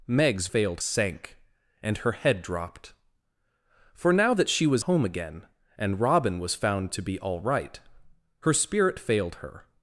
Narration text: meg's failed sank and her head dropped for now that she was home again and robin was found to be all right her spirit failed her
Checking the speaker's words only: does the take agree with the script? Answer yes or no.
yes